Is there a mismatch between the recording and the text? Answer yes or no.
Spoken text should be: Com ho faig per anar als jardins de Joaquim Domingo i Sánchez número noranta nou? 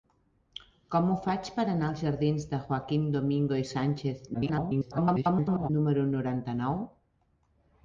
yes